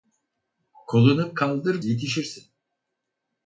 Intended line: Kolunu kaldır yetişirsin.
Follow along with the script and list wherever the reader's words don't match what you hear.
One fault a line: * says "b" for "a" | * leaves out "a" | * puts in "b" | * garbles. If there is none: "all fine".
all fine